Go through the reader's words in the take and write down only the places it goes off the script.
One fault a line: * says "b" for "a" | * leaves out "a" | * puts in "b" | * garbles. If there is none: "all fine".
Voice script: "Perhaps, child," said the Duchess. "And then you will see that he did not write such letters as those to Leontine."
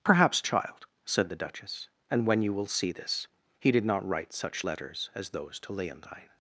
* says "when" for "then"
* says "this" for "that"